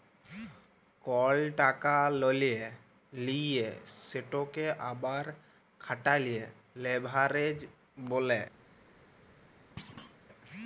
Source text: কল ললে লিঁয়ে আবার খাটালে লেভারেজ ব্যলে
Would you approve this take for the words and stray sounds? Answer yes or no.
no